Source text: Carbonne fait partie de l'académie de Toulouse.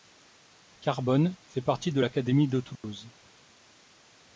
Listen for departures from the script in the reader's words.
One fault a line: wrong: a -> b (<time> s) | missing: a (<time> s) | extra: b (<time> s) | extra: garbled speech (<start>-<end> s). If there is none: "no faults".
no faults